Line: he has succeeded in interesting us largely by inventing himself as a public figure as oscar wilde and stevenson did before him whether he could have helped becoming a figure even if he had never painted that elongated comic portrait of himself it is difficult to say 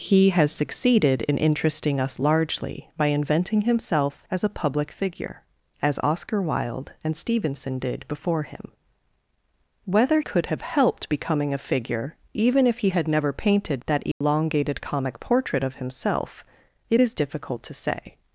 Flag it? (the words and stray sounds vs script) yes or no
yes